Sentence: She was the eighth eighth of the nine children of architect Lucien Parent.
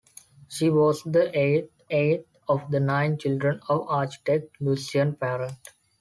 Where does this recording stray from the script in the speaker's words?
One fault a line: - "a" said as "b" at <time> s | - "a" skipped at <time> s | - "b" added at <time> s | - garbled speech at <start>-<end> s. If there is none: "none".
none